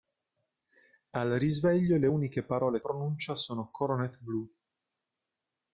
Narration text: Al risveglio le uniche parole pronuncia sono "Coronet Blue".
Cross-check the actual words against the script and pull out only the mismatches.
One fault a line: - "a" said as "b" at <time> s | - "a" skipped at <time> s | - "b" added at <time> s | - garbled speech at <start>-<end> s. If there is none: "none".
none